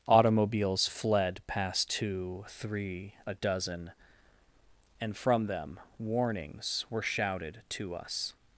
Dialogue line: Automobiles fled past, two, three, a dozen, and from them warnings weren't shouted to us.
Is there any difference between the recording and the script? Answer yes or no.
yes